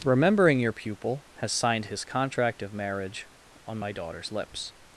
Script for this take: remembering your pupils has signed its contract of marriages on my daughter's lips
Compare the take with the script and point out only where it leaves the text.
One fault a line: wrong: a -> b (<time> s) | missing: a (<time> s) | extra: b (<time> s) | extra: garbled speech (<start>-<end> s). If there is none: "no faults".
wrong: pupils -> pupil (0.7 s)
wrong: its -> his (1.9 s)
wrong: marriages -> marriage (2.7 s)